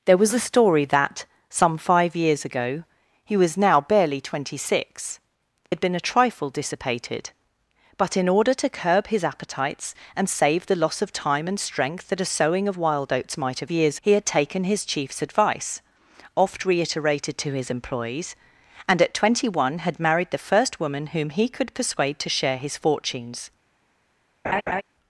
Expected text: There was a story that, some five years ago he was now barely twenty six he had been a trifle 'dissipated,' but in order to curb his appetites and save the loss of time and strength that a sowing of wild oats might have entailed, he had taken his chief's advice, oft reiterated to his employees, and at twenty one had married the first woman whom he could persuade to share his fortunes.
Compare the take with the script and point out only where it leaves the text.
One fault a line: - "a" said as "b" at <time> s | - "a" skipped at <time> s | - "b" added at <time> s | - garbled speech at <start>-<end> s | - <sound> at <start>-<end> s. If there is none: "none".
- "he" skipped at 5.2 s
- "entailed" said as "years" at 13.7 s
- laugh at 24.4-24.8 s